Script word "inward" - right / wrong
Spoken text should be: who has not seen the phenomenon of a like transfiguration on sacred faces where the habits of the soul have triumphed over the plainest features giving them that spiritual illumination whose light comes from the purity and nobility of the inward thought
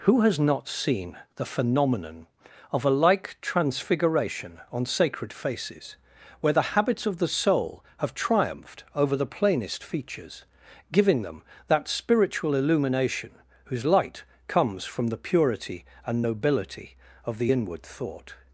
right